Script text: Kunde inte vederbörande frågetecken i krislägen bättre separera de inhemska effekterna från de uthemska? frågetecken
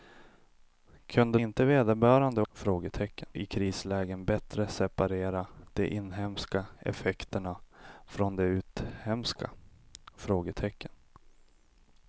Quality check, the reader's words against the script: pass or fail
pass